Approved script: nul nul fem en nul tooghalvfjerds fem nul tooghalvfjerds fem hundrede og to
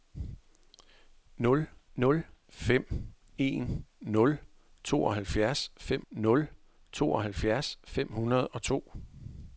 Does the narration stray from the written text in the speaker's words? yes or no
no